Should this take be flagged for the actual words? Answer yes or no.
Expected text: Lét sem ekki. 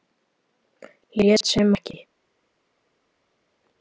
no